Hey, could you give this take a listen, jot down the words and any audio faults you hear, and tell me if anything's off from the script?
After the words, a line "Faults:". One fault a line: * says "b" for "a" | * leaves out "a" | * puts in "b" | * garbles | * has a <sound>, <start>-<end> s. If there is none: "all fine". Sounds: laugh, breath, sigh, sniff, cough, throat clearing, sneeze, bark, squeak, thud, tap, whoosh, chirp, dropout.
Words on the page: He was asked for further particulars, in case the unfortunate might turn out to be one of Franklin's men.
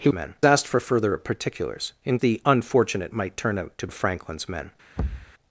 He men asked for further particulars, in the unfortunate might turn out to of Franklin's men.
Faults:
* says "men" for "was"
* leaves out "case"
* leaves out "be one"
* has a thud, 5.0-5.3 s